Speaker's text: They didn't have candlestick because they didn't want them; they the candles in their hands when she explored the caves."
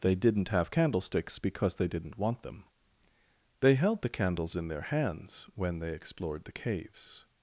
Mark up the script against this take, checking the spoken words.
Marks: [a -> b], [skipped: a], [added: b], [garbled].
They didn't have [candlestick -> candlesticks] because they didn't want them; they [added: held] the candles in their hands when [she -> they] explored the caves."